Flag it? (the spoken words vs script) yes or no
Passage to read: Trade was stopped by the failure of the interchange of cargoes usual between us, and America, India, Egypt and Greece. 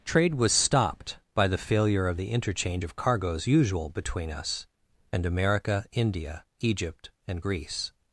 no